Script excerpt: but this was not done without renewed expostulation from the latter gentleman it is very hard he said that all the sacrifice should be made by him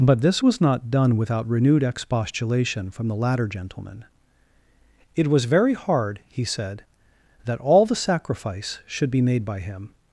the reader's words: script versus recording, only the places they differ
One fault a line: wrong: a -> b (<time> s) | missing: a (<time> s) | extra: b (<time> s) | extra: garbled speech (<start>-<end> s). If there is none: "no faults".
wrong: is -> was (5.3 s)